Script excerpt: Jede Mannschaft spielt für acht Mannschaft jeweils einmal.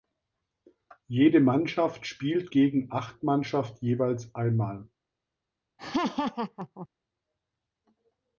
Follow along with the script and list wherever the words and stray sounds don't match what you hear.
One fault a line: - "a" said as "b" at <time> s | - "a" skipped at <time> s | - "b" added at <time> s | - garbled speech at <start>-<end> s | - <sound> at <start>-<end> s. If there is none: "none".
- "für" said as "gegen" at 2.5 s
- laugh at 5.8-6.9 s